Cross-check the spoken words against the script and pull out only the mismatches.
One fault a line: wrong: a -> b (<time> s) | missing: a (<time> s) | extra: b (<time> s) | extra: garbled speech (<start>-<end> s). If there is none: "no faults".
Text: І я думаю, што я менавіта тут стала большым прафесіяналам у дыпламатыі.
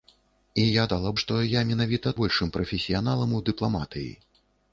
wrong: думаю -> стала (0.9 s)
missing: тут стала (2.1 s)